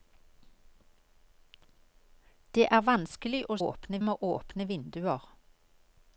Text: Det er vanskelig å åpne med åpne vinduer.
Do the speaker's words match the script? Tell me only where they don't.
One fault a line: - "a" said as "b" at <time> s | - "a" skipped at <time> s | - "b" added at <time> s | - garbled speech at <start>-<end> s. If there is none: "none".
none